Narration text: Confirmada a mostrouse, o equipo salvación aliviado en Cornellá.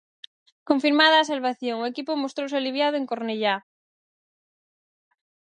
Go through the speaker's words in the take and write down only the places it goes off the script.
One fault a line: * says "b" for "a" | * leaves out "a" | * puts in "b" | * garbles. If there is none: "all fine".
* says "salvación" for "mostrouse"
* says "mostrouse" for "salvación"